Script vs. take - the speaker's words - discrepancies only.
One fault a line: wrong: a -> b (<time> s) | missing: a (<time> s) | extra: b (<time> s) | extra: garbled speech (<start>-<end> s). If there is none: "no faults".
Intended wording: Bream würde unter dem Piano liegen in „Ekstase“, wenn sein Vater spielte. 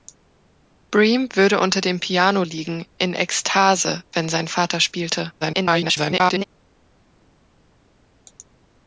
extra: garbled speech (5.4-6.4 s)